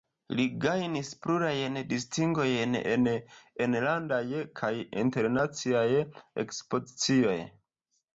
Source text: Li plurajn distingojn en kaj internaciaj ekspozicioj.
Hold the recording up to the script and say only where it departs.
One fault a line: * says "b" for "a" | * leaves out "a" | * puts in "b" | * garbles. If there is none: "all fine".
* puts in "gajnis"
* puts in "enlandaj"